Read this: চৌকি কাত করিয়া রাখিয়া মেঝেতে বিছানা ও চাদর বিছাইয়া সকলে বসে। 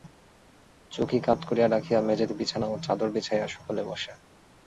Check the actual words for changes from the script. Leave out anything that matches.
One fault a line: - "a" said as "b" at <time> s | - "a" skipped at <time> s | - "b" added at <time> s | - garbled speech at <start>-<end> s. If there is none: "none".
none